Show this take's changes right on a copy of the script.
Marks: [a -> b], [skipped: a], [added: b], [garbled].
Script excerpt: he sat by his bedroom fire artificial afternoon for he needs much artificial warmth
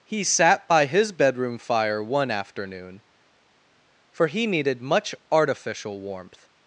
he sat by his bedroom fire [artificial -> one] afternoon for he [needs -> needed] much artificial warmth